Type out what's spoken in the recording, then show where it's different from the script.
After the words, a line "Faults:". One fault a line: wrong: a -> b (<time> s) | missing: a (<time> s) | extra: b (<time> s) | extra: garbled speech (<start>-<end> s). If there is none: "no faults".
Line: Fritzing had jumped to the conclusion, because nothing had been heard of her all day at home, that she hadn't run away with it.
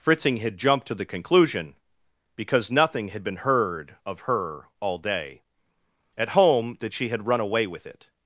Fritzing had jumped to the conclusion, because nothing had been heard of her all day at home, that she had run away with it.
Faults:
wrong: hadn't -> had (7.1 s)